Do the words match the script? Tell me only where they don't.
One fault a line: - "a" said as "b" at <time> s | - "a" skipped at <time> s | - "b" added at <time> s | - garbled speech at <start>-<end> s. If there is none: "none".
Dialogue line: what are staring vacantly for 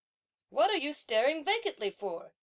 - "you" added at 0.7 s